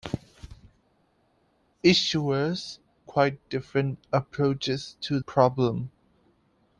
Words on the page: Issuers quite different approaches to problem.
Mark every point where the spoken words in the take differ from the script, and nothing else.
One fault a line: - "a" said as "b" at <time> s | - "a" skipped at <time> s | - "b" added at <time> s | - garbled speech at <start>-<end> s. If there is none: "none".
none